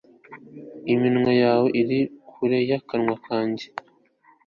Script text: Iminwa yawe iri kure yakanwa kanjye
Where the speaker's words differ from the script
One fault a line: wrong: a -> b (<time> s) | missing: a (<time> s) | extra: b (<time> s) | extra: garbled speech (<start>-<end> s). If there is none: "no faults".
no faults